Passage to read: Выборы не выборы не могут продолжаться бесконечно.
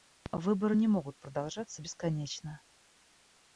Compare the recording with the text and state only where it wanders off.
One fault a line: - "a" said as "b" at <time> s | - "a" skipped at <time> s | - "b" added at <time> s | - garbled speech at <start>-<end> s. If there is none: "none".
- "выборы не" skipped at 0.9 s